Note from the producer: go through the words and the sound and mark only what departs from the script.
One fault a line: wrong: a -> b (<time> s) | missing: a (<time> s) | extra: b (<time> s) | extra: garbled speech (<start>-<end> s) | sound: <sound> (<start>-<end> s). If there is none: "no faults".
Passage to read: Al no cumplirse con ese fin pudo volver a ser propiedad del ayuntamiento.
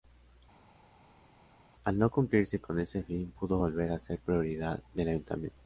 no faults